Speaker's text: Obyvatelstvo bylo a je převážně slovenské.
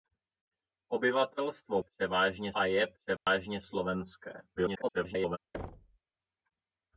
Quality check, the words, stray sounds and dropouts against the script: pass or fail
fail